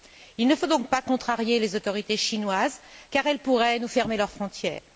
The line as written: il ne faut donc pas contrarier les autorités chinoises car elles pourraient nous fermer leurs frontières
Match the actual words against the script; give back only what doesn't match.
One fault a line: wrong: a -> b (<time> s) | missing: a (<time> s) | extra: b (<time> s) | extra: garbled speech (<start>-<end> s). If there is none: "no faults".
no faults